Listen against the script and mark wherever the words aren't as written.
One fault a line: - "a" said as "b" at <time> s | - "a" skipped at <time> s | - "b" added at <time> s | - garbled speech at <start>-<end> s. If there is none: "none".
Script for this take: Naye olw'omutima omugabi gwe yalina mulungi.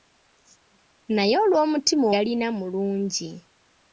- "omugabi gwe" skipped at 2.0 s